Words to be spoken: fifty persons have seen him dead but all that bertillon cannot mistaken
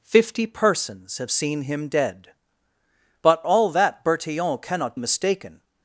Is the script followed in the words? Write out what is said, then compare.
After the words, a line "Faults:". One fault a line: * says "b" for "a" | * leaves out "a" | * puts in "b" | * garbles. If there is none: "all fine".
fifty persons have seen him dead but all that bertillon cannot mistaken
Faults:
all fine